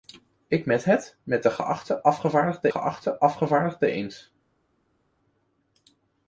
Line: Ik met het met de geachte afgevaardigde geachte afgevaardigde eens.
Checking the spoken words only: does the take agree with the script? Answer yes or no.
yes